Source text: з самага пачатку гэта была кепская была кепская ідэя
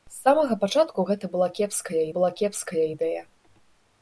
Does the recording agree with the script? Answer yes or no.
yes